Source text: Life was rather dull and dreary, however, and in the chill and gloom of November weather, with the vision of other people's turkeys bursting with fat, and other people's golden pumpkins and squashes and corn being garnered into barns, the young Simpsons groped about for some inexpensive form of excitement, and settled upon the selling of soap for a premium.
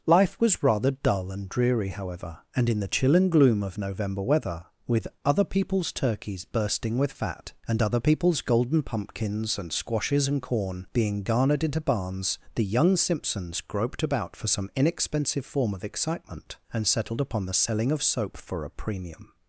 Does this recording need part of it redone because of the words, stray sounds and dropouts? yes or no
yes